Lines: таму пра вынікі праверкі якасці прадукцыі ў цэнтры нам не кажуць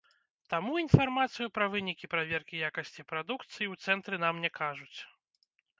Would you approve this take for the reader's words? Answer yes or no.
no